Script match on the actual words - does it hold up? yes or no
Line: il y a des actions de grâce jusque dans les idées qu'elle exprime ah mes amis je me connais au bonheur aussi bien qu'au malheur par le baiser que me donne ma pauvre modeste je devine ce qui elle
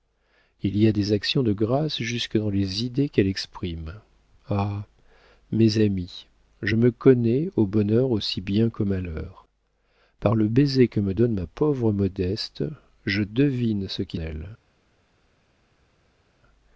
yes